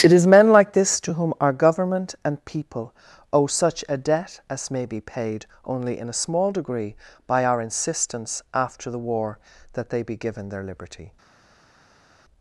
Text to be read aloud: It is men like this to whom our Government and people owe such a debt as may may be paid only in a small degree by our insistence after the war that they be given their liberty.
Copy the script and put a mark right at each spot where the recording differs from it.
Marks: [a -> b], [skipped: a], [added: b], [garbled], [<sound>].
It is men like this to whom our Government and people owe such a debt as may [skipped: may] be paid only in a small degree by our insistence after the war that they be given their liberty.